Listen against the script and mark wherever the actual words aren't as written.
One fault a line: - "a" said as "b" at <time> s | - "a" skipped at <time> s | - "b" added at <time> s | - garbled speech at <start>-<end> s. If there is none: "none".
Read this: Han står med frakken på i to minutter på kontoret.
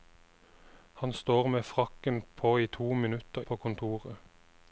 none